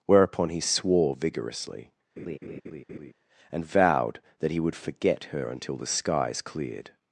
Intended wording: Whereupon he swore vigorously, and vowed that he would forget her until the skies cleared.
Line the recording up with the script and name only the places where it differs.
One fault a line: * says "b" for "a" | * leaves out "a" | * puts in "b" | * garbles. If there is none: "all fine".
all fine